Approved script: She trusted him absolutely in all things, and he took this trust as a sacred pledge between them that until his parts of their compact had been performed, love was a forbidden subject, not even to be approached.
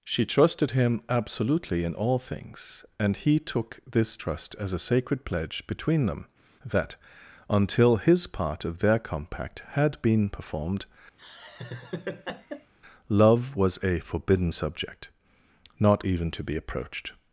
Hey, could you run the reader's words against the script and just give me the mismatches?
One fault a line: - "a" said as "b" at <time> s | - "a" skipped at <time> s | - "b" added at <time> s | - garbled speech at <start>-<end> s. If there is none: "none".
- "parts" said as "part" at 8.3 s